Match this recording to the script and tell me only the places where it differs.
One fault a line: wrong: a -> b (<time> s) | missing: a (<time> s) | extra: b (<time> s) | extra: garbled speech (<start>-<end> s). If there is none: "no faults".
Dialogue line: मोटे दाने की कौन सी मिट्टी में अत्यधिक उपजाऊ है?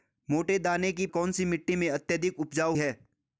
no faults